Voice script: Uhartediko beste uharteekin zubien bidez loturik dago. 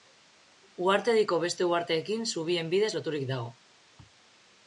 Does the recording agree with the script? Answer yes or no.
yes